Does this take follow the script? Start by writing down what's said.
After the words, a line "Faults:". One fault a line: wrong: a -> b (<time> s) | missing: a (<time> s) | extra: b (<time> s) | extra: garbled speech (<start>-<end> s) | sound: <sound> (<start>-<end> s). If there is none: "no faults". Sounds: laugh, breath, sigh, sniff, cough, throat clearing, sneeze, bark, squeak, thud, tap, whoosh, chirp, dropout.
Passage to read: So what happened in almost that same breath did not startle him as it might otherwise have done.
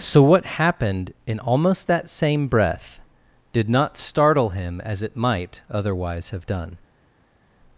So what happened in almost that same breath did not startle him as it might otherwise have done.
Faults:
no faults